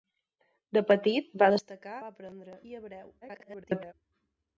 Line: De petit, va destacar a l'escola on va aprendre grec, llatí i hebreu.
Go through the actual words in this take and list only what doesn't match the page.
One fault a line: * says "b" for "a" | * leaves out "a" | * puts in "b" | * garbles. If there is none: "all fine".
* leaves out "a l'escola on"
* leaves out "grec llatí"
* garbles